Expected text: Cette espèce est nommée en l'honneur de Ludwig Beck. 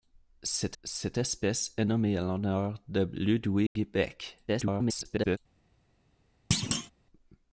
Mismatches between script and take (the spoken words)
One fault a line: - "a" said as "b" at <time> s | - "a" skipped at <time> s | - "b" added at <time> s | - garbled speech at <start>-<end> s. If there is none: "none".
- "cette" added at 0.8 s
- garbled speech at 4.5-5.4 s